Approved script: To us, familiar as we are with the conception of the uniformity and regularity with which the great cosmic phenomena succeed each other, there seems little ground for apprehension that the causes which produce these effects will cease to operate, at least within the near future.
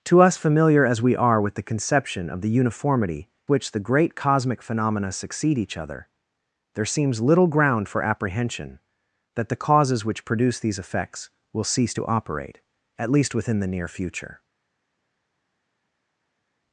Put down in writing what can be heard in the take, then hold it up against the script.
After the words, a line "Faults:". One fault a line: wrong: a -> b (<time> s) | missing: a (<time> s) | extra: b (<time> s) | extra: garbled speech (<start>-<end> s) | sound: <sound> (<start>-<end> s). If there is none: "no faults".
To us, familiar as we are with the conception of the uniformity which the great cosmic phenomena succeed each other, there seems little ground for apprehension that the causes which produce these effects will cease to operate, at least within the near future.
Faults:
missing: and regularity with (3.3 s)